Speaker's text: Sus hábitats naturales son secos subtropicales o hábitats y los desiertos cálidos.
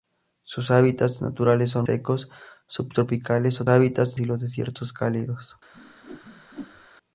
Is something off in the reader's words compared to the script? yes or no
no